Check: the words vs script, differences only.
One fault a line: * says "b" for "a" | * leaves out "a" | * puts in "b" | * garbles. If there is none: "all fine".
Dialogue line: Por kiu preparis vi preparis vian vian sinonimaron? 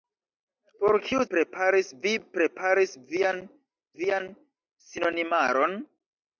all fine